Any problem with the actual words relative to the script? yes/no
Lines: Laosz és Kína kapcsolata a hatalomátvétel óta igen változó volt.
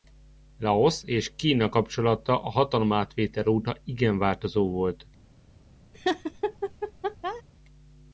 no